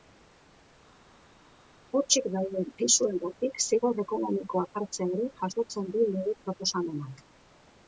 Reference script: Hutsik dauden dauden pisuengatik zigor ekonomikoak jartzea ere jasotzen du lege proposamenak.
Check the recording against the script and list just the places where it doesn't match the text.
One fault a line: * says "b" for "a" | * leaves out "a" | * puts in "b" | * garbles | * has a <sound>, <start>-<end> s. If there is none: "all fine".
* leaves out "dauden"